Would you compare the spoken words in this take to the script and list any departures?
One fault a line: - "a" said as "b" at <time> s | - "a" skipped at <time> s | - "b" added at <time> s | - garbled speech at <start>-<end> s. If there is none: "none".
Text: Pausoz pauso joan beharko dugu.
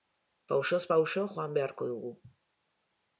none